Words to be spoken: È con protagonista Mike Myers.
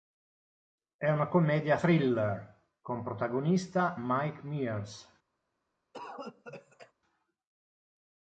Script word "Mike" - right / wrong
right